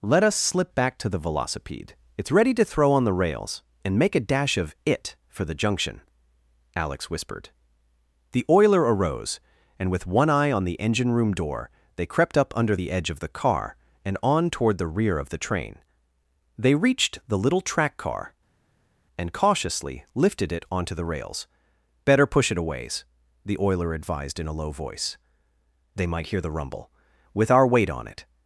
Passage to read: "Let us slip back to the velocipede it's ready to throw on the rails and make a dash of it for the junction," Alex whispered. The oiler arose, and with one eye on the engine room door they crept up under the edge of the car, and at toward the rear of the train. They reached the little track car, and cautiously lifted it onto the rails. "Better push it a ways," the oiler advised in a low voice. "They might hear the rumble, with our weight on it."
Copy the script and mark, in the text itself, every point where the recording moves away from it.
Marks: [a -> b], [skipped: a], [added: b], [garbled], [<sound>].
"Let us slip back to the velocipede it's ready to throw on the rails and make a dash of it for the junction," Alex whispered. The oiler arose, and with one eye on the engine room door they crept up under the edge of the car, and [at -> on] toward the rear of the train. They reached the little track car, and cautiously lifted it onto the rails. "Better push it a ways," the oiler advised in a low voice. "They might hear the rumble, with our weight on it."